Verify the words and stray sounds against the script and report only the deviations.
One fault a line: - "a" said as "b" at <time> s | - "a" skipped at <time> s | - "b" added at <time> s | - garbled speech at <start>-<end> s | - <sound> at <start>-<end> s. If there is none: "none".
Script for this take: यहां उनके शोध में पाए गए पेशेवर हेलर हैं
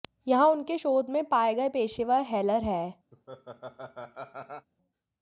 - laugh at 3.1-4.7 s